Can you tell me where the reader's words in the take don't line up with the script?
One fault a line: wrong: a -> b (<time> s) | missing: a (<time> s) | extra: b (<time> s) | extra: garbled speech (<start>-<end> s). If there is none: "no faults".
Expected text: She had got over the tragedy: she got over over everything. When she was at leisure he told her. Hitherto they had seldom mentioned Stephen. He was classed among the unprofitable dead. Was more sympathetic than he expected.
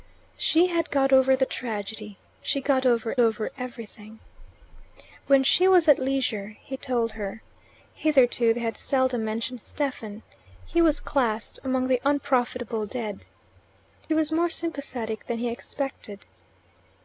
no faults